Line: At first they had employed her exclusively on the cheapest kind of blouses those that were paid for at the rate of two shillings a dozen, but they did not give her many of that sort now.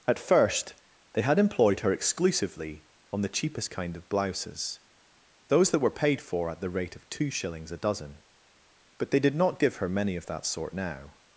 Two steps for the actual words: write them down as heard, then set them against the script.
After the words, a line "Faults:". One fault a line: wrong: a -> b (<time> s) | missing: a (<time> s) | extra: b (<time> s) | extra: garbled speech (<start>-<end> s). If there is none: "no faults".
At first they had employed her exclusively on the cheapest kind of blouses those that were paid for at the rate of two shillings a dozen, but they did not give her many of that sort now.
Faults:
no faults